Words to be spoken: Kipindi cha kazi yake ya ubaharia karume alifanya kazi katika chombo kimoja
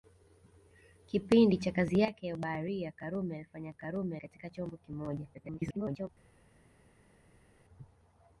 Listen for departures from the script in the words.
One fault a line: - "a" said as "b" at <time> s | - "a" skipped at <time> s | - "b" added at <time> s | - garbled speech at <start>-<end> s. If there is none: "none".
- "kazi" said as "karume" at 3.7 s
- garbled speech at 5.3-6.1 s